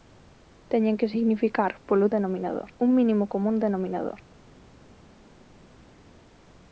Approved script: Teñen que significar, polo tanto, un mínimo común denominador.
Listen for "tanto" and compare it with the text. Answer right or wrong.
wrong